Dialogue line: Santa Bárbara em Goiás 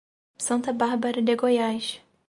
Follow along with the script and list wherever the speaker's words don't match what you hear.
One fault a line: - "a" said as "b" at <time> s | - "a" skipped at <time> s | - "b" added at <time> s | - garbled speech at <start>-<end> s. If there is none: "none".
- "em" said as "de" at 1.2 s